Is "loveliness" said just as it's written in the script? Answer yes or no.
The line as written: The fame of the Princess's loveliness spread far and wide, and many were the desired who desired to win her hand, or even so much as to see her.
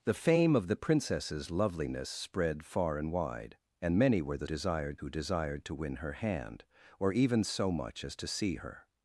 yes